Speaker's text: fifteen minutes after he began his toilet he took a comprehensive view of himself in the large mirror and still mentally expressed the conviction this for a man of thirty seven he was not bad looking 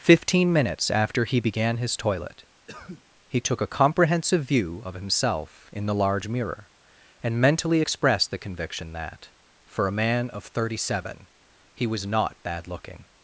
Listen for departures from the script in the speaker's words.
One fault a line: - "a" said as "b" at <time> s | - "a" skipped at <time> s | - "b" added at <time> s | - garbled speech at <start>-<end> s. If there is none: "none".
- "still" skipped at 7.4 s
- "this" said as "that" at 8.9 s